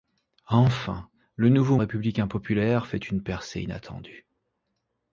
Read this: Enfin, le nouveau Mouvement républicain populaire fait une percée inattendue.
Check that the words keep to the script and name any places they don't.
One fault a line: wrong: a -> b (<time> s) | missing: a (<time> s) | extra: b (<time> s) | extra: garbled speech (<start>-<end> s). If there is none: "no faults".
missing: Mouvement (1.8 s)